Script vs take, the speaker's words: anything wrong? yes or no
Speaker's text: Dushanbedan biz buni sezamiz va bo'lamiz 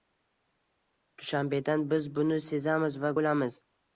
no